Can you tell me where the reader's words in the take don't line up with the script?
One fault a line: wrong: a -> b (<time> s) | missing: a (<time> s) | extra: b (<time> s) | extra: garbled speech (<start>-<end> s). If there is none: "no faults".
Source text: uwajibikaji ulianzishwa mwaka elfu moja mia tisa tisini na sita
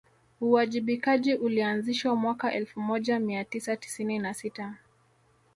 no faults